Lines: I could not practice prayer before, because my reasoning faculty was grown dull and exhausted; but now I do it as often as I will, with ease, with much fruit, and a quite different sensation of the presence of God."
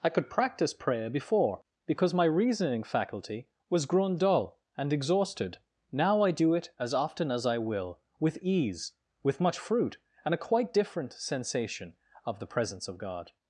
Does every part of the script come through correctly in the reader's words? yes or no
no